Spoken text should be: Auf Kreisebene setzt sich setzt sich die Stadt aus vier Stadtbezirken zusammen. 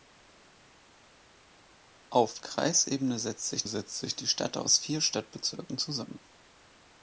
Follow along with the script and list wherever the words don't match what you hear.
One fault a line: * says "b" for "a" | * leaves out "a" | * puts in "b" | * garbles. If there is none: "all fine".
all fine